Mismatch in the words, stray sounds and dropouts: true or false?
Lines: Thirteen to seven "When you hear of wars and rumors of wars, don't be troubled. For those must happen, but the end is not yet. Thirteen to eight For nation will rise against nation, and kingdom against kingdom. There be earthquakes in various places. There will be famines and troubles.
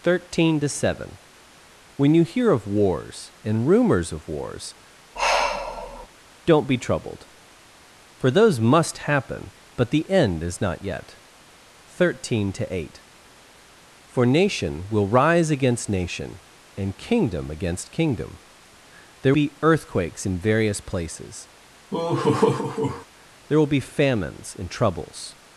true